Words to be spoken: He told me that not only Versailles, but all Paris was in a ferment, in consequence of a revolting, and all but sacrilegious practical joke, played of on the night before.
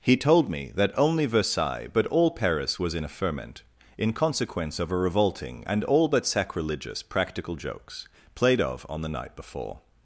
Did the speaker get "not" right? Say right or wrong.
wrong